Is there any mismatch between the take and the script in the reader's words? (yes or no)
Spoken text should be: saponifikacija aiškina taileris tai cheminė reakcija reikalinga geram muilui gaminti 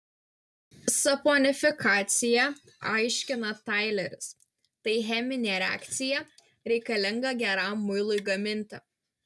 no